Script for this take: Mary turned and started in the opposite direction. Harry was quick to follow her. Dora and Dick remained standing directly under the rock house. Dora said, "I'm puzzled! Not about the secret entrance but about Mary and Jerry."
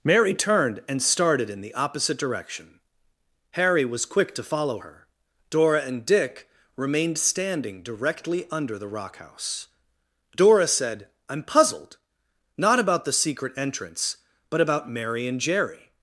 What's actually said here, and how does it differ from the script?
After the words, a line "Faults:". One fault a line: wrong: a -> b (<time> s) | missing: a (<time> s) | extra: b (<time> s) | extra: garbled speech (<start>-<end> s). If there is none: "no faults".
Mary turned and started in the opposite direction. Harry was quick to follow her. Dora and Dick remained standing directly under the rock house. Dora said, "I'm puzzled! Not about the secret entrance but about Mary and Jerry."
Faults:
no faults